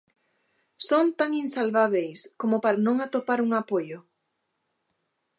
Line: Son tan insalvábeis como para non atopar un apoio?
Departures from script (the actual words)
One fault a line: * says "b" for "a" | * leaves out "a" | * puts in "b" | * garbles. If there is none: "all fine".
all fine